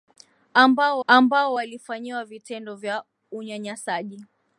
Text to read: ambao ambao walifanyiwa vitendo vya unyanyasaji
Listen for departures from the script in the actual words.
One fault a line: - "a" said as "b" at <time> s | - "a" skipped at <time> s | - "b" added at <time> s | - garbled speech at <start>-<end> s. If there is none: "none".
none